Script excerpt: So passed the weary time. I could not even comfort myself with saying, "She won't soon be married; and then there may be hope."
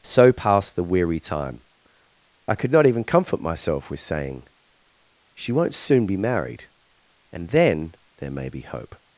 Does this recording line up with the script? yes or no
yes